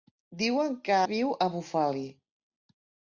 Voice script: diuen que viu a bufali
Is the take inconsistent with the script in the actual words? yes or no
no